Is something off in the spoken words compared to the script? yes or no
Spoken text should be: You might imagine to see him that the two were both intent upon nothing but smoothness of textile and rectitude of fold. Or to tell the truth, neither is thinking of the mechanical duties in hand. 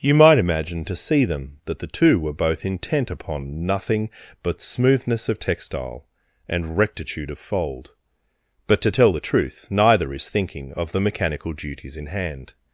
yes